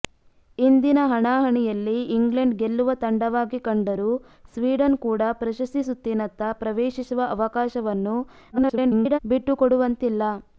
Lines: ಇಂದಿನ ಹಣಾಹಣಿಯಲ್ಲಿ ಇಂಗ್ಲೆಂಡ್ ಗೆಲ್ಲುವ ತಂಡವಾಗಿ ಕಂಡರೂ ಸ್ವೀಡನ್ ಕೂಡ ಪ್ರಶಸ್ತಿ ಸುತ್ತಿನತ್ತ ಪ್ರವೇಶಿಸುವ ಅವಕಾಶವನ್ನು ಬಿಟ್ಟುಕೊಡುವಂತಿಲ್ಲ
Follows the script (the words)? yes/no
no